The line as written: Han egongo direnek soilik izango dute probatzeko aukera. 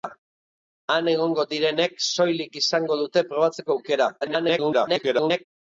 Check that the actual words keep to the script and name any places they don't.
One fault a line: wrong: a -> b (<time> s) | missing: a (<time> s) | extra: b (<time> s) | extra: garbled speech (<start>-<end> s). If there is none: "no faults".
extra: garbled speech (4.2-5.5 s)